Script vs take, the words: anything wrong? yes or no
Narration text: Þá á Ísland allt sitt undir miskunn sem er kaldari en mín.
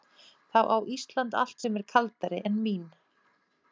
yes